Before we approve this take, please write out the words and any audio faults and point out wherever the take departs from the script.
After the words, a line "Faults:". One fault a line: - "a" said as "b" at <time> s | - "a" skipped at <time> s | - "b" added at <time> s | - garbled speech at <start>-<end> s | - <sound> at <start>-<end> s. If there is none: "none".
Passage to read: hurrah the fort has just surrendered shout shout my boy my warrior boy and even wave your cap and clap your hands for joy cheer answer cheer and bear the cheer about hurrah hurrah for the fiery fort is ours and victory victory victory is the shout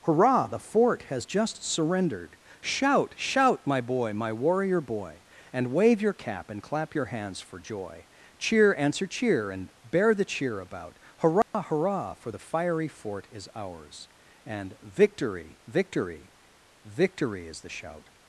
hurrah the fort has just surrendered shout shout my boy my warrior boy and wave your cap and clap your hands for joy cheer answer cheer and bear the cheer about hurrah hurrah for the fiery fort is ours and victory victory victory is the shout
Faults:
- "even" skipped at 5.7 s
- dropout at 11.4-11.5 s